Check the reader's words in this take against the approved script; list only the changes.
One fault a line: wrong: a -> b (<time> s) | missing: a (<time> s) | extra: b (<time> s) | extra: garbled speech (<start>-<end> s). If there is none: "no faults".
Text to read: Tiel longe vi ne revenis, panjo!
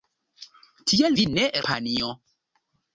missing: longe (1.1 s)
missing: revenis (1.5 s)